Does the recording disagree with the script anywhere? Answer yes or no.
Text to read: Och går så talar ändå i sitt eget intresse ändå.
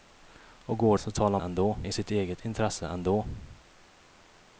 no